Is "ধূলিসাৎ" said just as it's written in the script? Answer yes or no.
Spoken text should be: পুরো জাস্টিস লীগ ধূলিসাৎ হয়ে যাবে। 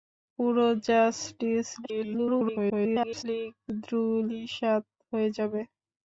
yes